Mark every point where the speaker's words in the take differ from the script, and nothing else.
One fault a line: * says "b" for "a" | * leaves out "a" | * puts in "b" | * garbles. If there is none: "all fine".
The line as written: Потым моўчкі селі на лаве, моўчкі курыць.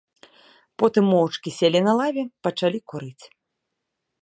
* says "пачалі" for "моўчкі"